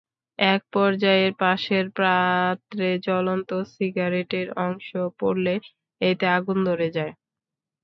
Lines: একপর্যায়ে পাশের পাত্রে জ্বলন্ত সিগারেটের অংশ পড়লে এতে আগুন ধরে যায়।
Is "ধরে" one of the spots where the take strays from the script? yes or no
no